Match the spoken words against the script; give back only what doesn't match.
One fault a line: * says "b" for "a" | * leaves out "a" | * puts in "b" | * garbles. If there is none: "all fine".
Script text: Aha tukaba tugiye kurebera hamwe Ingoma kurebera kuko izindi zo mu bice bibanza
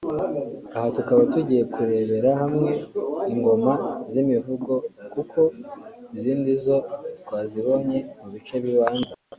* says "z'imivugo" for "kurebera"
* puts in "twazibonye"